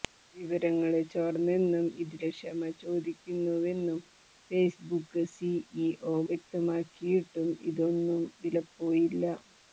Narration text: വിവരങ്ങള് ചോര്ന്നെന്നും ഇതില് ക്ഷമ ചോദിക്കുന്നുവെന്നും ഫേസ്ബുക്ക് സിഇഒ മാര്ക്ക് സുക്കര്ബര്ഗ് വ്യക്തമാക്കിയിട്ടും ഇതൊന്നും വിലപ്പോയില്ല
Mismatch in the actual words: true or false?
true